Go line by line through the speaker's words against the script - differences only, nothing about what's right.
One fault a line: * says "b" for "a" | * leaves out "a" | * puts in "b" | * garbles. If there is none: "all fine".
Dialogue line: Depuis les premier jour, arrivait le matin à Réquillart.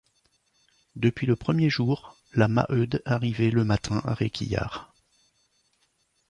* says "le" for "les"
* puts in "la Maheude"